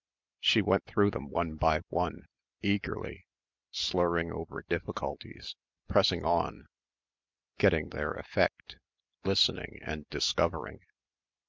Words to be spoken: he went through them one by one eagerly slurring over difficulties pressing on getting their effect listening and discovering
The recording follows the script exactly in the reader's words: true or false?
false